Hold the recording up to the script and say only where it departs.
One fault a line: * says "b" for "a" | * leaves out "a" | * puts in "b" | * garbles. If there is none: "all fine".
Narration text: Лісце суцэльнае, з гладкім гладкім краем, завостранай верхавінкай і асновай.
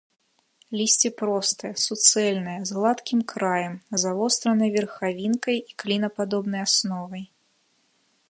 * puts in "простае"
* leaves out "гладкім"
* puts in "клінападобнай"